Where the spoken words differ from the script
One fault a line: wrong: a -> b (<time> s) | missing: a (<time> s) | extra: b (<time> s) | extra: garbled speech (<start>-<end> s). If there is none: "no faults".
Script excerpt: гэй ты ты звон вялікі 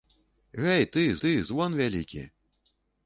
no faults